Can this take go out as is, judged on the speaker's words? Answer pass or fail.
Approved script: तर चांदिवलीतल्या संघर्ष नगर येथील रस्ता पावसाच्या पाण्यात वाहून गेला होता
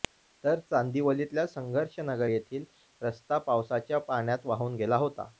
pass